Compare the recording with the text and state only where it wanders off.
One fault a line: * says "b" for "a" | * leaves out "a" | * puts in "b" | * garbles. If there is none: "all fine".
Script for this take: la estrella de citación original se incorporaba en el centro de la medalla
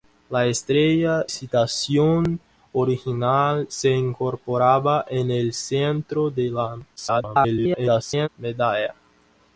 * leaves out "de"
* garbles